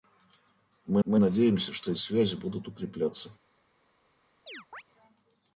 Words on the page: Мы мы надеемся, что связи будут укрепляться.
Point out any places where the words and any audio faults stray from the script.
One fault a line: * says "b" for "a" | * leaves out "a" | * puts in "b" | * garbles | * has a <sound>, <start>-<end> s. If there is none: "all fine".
* has a chirp, 4.5-4.8 s